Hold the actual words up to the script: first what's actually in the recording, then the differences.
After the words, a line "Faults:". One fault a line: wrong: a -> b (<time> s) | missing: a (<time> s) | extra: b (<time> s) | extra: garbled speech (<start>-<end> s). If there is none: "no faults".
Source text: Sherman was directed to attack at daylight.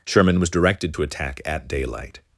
Sherman was directed to attack at daylight.
Faults:
no faults